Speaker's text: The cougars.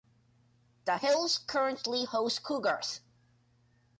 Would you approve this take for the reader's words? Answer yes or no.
no